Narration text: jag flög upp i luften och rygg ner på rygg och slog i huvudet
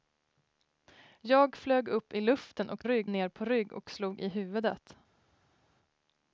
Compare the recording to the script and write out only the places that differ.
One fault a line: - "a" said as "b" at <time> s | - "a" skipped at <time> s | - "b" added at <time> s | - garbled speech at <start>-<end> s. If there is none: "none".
none